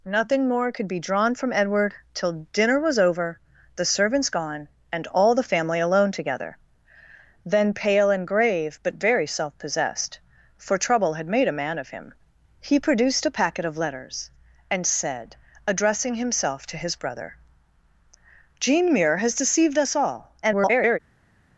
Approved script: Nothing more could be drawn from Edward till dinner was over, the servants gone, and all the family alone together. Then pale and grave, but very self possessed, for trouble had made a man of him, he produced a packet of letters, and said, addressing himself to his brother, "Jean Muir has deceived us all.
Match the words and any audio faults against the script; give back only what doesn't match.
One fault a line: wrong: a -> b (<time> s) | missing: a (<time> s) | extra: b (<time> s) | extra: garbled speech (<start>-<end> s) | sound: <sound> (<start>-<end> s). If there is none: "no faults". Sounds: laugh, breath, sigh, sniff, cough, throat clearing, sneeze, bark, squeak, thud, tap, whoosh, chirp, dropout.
extra: garbled speech (20.4-21.0 s)